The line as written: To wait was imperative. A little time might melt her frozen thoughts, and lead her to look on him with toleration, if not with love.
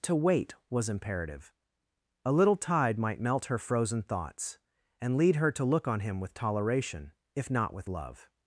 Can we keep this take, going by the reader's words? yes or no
no